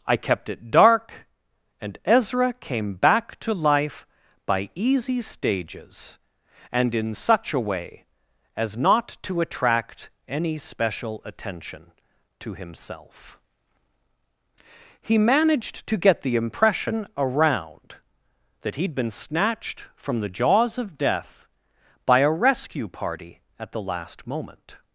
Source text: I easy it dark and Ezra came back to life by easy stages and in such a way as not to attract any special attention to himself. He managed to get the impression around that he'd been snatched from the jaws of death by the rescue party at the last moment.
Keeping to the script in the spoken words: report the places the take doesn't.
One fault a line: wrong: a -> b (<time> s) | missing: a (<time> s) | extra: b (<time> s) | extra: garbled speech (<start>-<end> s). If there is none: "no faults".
wrong: easy -> kept (0.2 s)
wrong: the -> a (22.2 s)